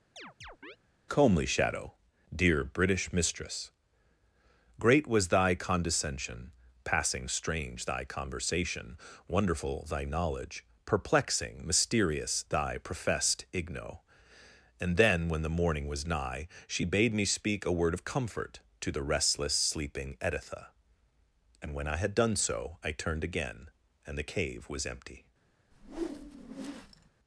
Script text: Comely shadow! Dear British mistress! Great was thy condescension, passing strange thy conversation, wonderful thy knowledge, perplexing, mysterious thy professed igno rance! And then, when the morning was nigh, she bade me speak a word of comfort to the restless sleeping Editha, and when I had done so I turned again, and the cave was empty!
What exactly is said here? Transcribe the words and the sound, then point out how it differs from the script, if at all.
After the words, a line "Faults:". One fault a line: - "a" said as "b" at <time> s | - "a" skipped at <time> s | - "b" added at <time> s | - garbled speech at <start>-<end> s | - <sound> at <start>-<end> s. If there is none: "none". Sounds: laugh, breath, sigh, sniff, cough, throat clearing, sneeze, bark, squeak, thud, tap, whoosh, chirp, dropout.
Comely shadow! Dear British mistress! Great was thy condescension, passing strange thy conversation, wonderful thy knowledge, perplexing, mysterious thy professed igno! And then, when the morning was nigh, she bade me speak a word of comfort to the restless sleeping Editha, and when I had done so I turned again, and the cave was empty!
Faults:
- chirp at 0.2-0.8 s
- "rance" skipped at 14.0 s
- whoosh at 25.7-27.1 s